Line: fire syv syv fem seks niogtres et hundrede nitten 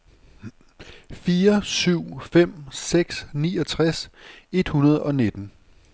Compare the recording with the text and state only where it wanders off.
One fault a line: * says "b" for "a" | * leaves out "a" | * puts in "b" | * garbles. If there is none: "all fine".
* leaves out "syv"
* puts in "og"